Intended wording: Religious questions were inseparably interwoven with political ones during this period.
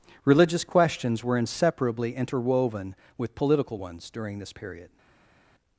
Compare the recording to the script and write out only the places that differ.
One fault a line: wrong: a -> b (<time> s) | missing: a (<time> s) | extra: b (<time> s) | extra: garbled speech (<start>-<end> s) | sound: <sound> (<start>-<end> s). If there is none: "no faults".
no faults